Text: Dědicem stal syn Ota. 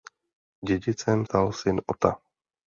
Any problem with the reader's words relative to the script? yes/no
no